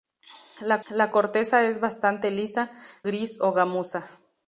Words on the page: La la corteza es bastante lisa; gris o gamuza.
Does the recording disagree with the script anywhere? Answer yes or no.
no